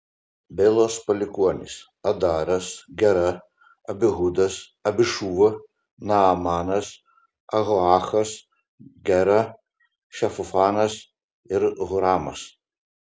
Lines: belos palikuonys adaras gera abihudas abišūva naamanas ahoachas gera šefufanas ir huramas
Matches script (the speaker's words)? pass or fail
pass